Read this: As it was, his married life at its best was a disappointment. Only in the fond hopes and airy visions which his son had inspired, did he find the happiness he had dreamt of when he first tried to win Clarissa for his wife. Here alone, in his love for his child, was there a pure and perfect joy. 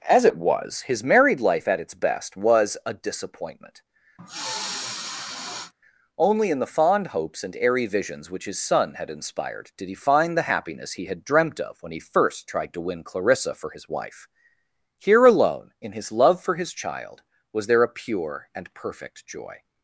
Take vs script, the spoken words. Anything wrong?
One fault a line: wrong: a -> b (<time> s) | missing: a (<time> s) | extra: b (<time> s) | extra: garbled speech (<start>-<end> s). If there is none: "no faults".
no faults